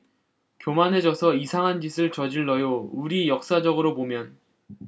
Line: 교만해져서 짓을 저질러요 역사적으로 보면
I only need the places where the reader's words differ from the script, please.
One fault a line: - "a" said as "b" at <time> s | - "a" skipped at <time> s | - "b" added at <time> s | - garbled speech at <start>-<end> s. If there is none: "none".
- "이상한" added at 1.4 s
- "우리" added at 2.9 s